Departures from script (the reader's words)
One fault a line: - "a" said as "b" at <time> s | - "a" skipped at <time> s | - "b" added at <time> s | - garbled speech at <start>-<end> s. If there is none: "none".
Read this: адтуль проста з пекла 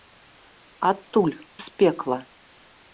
- "проста" skipped at 1.4 s